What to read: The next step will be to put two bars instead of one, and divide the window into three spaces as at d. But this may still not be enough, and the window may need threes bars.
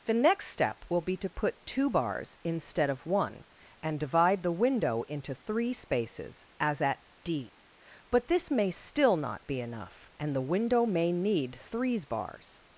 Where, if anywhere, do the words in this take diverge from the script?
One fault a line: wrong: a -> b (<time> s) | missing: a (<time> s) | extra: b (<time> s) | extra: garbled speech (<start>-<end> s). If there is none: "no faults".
no faults